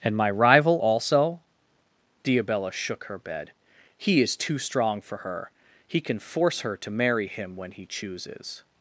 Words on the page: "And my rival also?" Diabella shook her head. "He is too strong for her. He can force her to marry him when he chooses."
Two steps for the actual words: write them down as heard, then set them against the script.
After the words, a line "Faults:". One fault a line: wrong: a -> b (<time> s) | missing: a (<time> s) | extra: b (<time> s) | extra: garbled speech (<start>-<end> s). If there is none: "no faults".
"And my rival also?" Diabella shook her bed. "He is too strong for her. He can force her to marry him when he chooses."
Faults:
wrong: head -> bed (3.2 s)